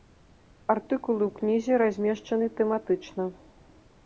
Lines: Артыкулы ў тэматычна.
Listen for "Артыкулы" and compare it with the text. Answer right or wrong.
right